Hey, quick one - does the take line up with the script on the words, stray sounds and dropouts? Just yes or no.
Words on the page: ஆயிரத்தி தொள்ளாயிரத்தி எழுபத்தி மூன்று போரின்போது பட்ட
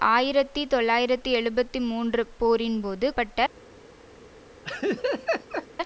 no